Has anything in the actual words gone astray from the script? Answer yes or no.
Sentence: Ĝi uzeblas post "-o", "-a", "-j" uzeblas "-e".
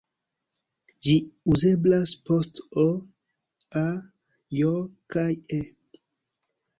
yes